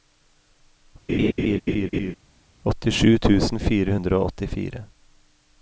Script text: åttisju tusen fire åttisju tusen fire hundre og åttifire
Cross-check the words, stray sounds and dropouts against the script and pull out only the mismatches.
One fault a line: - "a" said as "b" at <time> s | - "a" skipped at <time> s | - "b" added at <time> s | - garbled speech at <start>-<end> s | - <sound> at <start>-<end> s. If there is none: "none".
- laugh at 1.1-2.1 s
- "åttisju tusen fire" skipped at 3.9 s